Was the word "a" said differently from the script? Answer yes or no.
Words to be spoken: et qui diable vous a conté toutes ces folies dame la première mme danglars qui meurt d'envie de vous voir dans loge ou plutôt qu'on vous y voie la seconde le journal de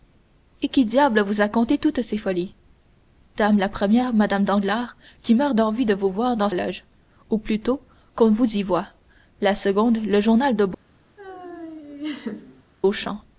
no